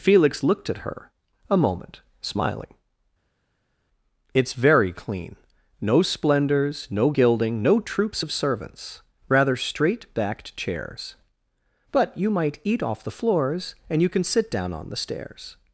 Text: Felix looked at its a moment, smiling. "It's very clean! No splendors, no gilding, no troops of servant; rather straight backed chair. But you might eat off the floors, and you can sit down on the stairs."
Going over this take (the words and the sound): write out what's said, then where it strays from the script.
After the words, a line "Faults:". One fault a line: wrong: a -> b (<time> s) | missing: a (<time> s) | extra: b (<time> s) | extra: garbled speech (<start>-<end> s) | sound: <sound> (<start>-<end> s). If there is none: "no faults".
Felix looked at her a moment, smiling. "It's very clean! No splendors, no gilding, no troops of servants; rather straight backed chairs. But you might eat off the floors, and you can sit down on the stairs."
Faults:
wrong: its -> her (0.8 s)
wrong: servant -> servants (8.3 s)
wrong: chair -> chairs (10.6 s)